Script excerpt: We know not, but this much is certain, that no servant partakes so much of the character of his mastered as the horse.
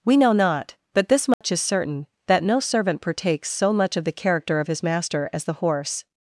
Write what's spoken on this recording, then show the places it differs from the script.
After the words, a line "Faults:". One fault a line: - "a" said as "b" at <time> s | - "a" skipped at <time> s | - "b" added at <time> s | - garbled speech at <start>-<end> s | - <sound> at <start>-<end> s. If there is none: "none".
We know not, but this much is certain, that no servant partakes so much of the character of his master as the horse.
Faults:
- dropout at 1.3-1.4 s
- "mastered" said as "master" at 4.8 s